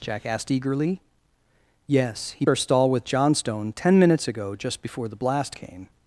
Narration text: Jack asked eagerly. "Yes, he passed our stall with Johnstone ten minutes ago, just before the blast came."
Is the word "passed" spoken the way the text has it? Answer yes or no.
no